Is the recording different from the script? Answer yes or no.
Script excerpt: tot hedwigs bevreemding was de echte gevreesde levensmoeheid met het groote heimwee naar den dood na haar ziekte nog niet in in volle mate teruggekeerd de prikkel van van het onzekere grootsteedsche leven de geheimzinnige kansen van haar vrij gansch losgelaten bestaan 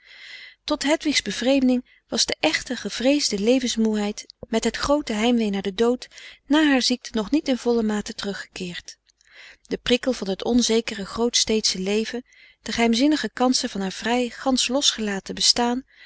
yes